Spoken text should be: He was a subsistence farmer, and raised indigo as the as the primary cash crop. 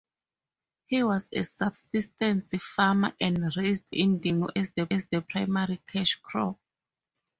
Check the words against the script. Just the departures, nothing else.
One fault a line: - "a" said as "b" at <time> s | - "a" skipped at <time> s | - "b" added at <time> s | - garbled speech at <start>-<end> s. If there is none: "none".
none